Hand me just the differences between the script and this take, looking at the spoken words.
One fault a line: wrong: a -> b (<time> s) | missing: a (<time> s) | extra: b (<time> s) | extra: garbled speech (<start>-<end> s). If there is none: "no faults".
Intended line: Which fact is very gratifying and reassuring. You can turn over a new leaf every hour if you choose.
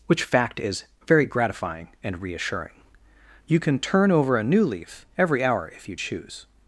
no faults